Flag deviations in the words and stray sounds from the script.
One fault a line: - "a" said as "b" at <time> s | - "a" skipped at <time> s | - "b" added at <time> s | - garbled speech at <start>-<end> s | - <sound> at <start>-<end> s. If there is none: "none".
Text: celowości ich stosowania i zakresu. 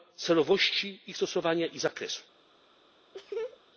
- laugh at 3.1-3.6 s